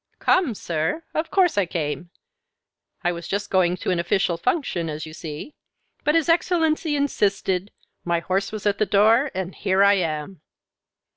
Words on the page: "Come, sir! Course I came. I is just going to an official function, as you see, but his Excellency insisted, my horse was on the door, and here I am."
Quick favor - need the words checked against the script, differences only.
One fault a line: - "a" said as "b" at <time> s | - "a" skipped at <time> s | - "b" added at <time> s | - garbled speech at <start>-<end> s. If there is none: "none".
- "Of" added at 1.1 s
- "is" said as "was" at 3.1 s
- "on" said as "at" at 8.7 s